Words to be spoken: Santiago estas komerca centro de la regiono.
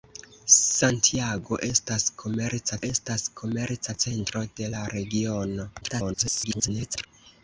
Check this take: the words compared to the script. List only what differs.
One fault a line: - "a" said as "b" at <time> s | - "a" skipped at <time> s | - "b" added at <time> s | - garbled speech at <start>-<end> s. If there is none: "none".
- "estas komerca" added at 2.9 s
- garbled speech at 5.8-7.1 s